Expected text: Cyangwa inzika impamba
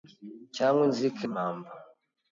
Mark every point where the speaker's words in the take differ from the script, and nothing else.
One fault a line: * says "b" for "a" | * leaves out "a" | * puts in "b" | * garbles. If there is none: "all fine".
all fine